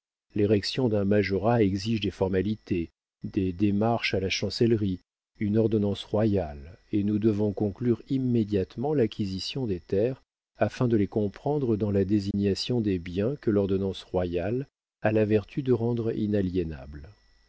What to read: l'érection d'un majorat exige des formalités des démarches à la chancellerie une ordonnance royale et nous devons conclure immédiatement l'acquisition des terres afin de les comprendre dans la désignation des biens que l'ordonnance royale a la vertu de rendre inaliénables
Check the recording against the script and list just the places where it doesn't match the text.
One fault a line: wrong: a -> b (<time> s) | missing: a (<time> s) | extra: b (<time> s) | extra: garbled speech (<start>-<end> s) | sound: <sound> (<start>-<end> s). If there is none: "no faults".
sound: dropout (12.3-12.3 s)